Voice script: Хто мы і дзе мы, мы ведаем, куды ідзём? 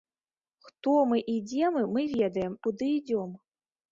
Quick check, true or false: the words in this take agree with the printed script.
true